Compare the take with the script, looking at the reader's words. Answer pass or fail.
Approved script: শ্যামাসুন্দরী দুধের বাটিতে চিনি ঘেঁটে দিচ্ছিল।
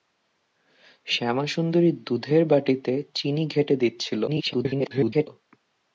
fail